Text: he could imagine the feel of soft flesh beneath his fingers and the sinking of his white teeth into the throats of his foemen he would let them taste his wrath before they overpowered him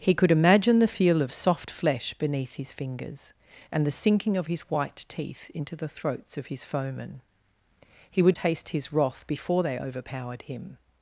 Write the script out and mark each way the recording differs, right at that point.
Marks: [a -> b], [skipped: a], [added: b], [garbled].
he could imagine the feel of soft flesh beneath his fingers and the sinking of his white teeth into the throats of his foemen he would [skipped: let them] taste his wrath before they overpowered him